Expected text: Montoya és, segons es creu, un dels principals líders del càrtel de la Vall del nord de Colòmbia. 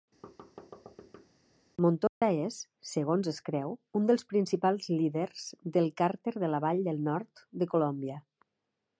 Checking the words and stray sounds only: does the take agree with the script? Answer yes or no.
no